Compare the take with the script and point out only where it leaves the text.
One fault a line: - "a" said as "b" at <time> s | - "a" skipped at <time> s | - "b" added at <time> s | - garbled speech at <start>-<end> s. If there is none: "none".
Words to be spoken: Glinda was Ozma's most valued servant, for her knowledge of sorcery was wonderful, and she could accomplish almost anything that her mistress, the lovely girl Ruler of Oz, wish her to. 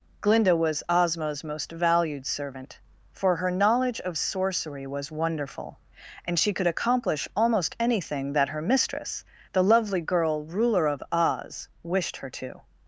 - "wish" said as "wished" at 11.8 s